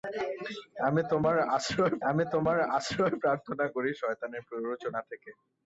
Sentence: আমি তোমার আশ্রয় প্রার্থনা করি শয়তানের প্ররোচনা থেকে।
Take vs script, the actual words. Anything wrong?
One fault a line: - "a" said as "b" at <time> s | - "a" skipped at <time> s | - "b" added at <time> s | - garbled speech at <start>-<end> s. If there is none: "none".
- "আমি তোমার আশ্রয়" added at 2.1 s